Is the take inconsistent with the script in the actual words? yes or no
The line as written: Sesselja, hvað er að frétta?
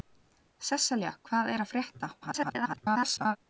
yes